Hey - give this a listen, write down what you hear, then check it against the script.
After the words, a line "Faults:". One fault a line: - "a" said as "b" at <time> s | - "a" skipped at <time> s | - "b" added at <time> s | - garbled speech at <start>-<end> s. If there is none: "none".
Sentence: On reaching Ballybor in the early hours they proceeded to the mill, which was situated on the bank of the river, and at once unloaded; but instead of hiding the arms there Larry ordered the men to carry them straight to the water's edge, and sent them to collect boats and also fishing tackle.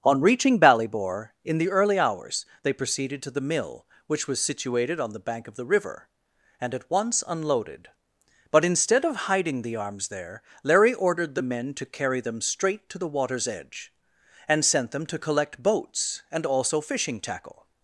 On reaching Ballybor in the early hours they proceeded to the mill, which was situated on the bank of the river, and at once unloaded; but instead of hiding the arms there Larry ordered the men to carry them straight to the water's edge, and sent them to collect boats and also fishing tackle.
Faults:
none